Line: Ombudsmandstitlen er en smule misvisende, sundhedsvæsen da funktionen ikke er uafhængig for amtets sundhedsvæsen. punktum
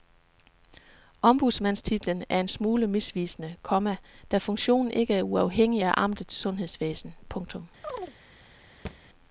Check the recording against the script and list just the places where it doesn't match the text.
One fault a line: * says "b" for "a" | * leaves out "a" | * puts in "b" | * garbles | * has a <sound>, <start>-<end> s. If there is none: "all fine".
* says "komma" for "sundhedsvæsen"
* says "af" for "for"
* has a chirp, 7.8-8.1 s
* has a thud, 8.9-9.0 s